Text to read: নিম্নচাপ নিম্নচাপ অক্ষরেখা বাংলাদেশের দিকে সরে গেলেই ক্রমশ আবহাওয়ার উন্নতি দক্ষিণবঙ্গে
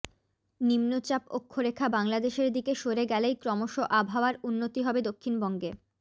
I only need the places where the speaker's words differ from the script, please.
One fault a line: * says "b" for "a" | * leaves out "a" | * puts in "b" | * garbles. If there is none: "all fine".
* leaves out "নিম্নচাপ"
* puts in "হবে"